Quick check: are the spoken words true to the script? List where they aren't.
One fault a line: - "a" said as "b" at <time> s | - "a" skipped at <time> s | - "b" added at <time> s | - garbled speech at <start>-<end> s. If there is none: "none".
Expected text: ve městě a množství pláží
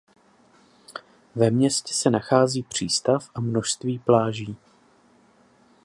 - "se nachází přístav" added at 1.9 s